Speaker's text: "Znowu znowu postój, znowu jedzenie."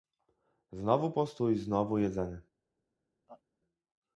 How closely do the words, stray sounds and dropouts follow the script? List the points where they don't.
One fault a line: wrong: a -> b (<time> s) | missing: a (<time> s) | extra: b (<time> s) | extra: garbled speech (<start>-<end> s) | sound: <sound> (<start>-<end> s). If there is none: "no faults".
missing: znowu (1.1 s)
sound: laugh (3.3-3.4 s)